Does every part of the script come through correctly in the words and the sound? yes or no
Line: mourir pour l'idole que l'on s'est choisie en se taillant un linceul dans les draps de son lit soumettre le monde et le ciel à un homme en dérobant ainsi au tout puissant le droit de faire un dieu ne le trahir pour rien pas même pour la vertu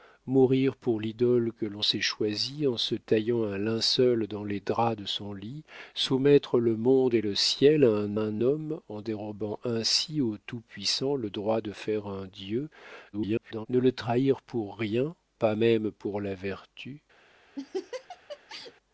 no